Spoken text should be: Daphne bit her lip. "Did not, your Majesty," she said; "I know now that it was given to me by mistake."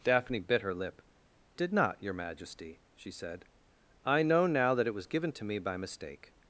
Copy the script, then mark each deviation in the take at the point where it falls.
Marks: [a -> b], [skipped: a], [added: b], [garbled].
Daphne bit her lip. "Did not, your Majesty," she said; "I know now that it was given to me by mistake."